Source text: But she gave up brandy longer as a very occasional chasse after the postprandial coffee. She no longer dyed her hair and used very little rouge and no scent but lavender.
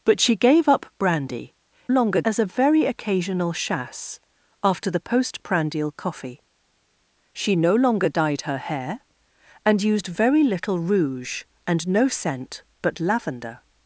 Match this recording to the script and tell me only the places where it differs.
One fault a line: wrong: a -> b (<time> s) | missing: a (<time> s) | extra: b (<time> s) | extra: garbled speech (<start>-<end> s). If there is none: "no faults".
no faults